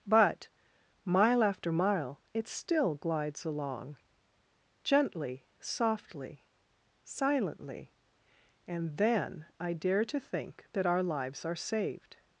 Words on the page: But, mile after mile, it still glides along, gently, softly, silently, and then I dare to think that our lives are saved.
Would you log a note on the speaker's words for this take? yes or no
no